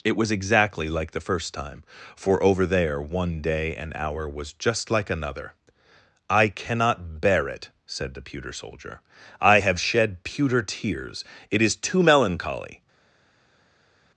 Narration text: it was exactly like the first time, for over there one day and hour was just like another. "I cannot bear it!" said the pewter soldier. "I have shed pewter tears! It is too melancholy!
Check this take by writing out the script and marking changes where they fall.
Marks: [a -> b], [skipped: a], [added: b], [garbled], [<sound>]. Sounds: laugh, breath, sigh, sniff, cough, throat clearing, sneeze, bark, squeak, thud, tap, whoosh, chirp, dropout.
it was exactly like the first time, for over there one day and hour was just like another. "I cannot bear it!" said the pewter soldier. "I have shed pewter tears! It is too melancholy!